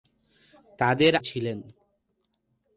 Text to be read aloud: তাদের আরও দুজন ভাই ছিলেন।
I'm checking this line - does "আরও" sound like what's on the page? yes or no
no